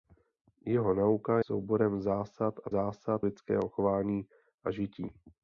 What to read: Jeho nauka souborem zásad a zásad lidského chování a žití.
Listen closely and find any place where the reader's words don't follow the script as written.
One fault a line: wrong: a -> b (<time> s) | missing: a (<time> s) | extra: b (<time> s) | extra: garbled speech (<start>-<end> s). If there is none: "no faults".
no faults